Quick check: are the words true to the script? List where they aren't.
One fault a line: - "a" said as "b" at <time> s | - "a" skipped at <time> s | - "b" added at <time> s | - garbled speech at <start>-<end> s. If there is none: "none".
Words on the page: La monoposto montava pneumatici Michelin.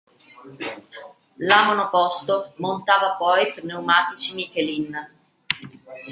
- "poi" added at 3.2 s